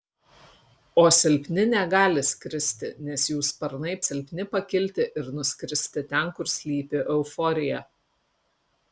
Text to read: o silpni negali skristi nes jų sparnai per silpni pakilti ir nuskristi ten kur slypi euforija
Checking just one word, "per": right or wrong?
wrong